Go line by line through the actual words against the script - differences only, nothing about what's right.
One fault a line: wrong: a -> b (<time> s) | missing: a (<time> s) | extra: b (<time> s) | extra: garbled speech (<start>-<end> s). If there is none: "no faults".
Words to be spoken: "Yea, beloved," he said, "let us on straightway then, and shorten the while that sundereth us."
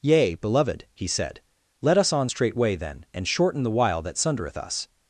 no faults